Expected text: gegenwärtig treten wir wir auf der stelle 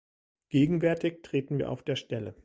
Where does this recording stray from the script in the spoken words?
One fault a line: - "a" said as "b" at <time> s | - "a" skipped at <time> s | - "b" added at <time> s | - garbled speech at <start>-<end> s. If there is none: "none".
- "wir" skipped at 1.7 s